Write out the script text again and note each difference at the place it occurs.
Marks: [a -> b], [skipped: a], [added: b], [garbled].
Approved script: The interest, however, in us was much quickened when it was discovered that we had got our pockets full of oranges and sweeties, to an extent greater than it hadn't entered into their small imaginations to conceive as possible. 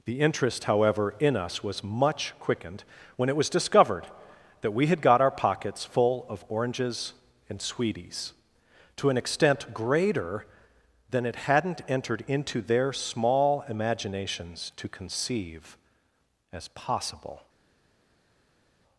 The interest, however, in us was much quickened when it was discovered that we had got our pockets full of oranges and sweeties, to an extent greater than it hadn't entered into their small imaginations to conceive as possible.